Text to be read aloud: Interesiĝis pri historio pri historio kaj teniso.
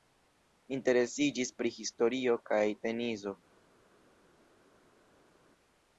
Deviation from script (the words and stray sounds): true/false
true